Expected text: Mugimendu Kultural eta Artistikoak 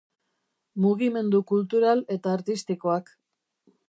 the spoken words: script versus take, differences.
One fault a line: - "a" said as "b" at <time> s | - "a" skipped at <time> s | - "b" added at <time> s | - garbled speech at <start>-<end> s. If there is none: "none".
none